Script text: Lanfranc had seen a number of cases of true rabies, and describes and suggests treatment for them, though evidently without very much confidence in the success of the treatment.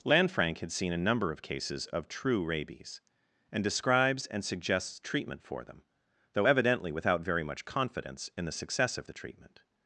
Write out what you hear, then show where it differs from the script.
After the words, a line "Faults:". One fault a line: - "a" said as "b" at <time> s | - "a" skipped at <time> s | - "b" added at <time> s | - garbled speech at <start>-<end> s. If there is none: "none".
Lanfranc had seen a number of cases of true rabies, and describes and suggests treatment for them, though evidently without very much confidence in the success of the treatment.
Faults:
none